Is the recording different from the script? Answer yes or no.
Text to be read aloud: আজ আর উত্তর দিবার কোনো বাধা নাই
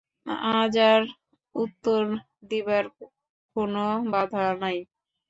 no